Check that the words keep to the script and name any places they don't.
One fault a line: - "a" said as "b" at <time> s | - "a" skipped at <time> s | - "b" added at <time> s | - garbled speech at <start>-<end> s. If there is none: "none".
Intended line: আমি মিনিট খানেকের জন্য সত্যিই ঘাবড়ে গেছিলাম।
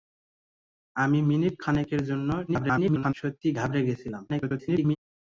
- garbled speech at 2.5-3.1 s
- garbled speech at 4.3-5.0 s